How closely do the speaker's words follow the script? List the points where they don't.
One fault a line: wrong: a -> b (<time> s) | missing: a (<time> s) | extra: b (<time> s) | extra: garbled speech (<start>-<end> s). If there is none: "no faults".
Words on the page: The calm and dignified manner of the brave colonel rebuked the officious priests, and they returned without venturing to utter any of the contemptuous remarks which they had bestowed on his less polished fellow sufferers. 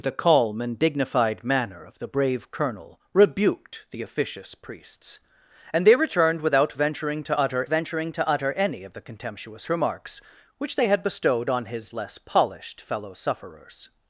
extra: venturing to utter (7.7 s)